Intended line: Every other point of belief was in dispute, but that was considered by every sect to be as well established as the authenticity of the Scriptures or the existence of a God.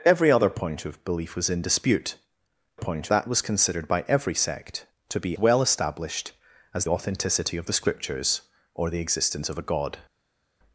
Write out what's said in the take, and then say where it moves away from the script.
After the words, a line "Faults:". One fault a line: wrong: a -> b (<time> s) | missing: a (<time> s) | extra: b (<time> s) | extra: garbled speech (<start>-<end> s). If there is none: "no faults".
Every other point of belief was in dispute, point that was considered by every sect to be well established as authenticity of the Scriptures or the existence of a God.
Faults:
wrong: but -> point (2.7 s)
missing: as (5.4 s)
missing: the (6.8 s)